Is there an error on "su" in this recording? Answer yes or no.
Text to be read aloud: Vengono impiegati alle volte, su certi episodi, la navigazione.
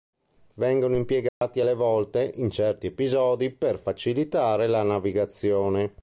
yes